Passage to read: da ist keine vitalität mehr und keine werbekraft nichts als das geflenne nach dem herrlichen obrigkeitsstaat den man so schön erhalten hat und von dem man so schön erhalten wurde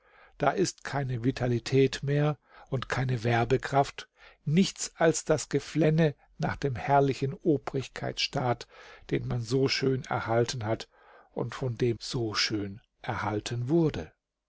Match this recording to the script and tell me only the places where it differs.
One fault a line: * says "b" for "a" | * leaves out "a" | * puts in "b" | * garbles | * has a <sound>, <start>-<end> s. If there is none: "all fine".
* leaves out "man"